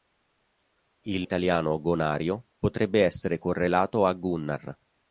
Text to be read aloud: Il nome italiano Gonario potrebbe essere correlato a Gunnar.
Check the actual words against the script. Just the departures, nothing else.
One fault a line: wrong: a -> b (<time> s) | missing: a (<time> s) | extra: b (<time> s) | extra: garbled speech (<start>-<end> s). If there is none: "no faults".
missing: nome (1.3 s)